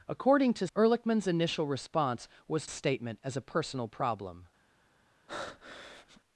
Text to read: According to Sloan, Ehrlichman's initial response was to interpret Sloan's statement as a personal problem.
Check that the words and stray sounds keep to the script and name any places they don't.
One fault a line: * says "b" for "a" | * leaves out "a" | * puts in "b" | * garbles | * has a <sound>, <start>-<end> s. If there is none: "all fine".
* leaves out "Sloan"
* leaves out "to interpret Sloan's"
* has a breath, 5.3-6.2 s